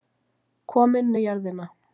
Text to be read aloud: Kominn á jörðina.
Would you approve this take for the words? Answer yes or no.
yes